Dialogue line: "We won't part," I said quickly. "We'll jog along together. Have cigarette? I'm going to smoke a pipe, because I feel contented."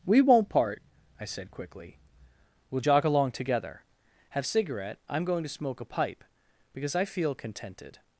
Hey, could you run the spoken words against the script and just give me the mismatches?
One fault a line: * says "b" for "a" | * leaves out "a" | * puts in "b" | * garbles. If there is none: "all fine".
all fine